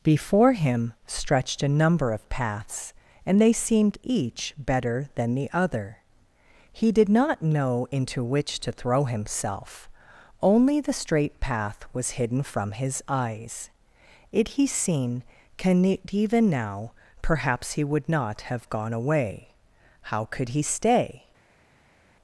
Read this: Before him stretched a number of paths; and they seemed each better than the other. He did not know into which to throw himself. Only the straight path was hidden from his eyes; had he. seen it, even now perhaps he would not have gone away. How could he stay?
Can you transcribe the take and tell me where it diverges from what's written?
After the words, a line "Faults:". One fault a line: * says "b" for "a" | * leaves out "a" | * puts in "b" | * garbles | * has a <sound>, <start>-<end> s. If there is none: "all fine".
Before him stretched a number of paths; and they seemed each better than the other. He did not know into which to throw himself. Only the straight path was hidden from his eyes; it he. seen can it, even now perhaps he would not have gone away. How could he stay?
Faults:
* says "it" for "had"
* puts in "can"